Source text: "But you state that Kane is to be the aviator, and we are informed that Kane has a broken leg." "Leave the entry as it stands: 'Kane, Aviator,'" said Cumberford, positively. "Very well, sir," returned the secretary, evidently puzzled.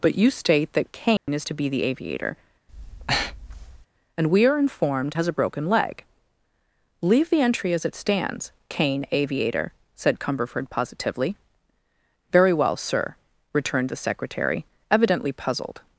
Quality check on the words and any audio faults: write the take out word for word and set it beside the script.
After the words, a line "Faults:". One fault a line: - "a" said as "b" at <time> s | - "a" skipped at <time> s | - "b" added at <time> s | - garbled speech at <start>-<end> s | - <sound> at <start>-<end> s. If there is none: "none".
"But you state that Kane is to be the aviator, and we are informed has a broken leg." "Leave the entry as it stands: 'Kane, Aviator,'" said Cumberford, positively. "Very well, sir," returned the secretary, evidently puzzled.
Faults:
- dropout at 1.2-1.3 s
- breath at 2.7-3.9 s
- "that Kane" skipped at 5.1 s